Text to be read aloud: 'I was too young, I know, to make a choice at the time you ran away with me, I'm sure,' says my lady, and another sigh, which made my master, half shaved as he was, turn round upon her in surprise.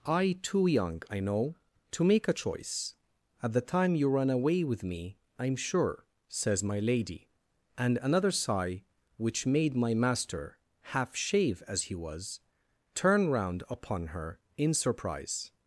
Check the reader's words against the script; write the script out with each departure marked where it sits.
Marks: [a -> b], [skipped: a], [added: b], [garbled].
'I [skipped: was] too young, I know, to make a choice at the time you ran away with me, I'm sure,' says my lady, and another sigh, which made my master, half [shaved -> shave] as he was, turn round upon her in surprise.